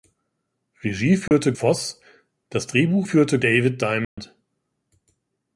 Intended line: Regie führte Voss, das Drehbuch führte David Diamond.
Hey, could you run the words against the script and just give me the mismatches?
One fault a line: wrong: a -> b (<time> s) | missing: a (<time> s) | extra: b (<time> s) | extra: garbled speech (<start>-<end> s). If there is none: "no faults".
no faults